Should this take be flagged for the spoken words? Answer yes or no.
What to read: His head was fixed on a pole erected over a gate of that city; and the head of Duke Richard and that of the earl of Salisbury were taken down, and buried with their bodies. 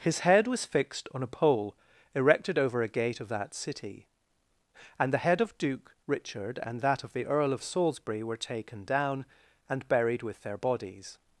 no